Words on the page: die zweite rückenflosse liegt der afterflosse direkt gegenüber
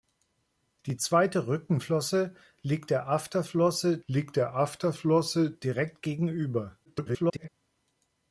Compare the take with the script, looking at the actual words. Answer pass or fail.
fail